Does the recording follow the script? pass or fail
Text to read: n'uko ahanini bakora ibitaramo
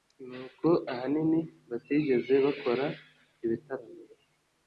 fail